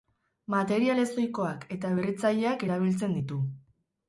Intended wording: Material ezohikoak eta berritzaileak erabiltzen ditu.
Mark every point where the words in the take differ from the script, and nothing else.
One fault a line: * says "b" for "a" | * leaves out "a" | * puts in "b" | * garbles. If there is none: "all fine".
all fine